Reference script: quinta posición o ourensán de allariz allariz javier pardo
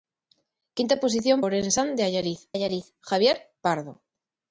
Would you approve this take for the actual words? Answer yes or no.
yes